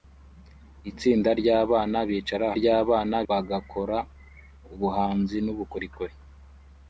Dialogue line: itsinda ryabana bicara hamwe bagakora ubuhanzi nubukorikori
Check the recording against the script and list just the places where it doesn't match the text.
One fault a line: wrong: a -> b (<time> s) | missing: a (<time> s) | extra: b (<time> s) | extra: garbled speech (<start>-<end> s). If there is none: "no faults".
wrong: hamwe -> ryabana (2.6 s)